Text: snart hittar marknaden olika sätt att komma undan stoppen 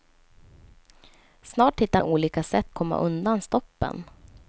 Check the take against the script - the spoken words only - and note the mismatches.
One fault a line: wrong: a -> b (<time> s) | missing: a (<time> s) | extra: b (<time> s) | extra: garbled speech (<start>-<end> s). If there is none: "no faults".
missing: marknaden (2.0 s)
missing: att (2.8 s)